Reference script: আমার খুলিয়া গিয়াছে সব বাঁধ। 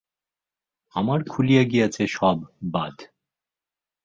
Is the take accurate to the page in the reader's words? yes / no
yes